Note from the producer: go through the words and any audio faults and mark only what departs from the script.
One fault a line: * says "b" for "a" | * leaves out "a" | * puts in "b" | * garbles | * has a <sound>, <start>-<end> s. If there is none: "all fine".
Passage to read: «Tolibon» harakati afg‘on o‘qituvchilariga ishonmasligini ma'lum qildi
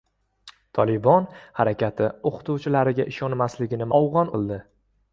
* leaves out "afg‘on"
* says "afg‘on" for "ma'lum"